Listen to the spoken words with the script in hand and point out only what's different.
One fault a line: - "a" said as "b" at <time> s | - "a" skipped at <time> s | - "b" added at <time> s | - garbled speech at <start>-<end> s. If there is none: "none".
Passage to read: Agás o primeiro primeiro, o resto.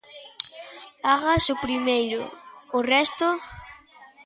- "primeiro" skipped at 2.2 s